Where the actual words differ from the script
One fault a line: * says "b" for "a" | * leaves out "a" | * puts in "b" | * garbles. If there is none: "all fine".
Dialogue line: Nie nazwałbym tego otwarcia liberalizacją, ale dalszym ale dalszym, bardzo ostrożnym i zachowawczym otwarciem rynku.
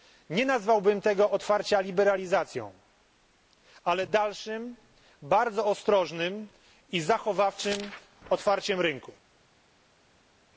* leaves out "ale dalszym"